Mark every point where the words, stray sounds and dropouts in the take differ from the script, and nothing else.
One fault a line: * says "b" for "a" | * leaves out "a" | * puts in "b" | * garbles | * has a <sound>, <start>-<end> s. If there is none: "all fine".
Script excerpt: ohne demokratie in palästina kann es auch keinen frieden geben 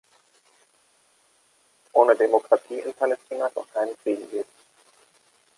* leaves out "kann"